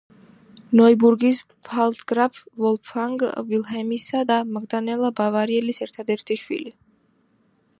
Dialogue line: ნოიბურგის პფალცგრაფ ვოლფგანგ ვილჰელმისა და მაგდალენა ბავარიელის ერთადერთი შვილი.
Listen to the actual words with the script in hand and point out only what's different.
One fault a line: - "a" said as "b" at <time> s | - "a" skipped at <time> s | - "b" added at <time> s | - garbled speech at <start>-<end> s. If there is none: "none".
none